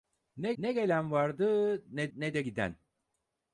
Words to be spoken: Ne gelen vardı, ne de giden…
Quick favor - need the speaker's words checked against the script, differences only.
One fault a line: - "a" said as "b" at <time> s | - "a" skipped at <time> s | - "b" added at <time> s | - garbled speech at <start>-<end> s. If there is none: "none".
- "ne" added at 0.6 s
- "ne" added at 2.1 s